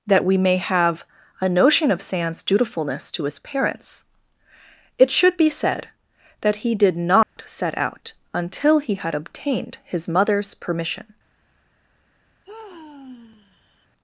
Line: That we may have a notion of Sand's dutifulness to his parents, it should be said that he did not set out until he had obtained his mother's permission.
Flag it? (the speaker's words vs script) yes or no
no